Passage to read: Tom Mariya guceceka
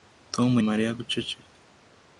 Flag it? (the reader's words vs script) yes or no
no